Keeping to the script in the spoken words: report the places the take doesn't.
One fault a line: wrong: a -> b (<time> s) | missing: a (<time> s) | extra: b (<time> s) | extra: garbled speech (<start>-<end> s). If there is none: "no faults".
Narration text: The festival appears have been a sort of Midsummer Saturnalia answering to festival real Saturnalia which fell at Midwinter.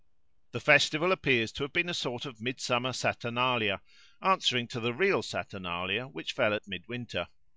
extra: to (1.5 s)
wrong: festival -> the (4.8 s)